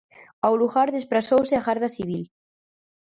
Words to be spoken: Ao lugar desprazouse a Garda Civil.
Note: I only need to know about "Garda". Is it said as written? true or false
true